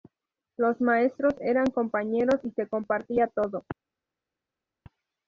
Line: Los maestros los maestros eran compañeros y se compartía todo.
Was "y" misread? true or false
false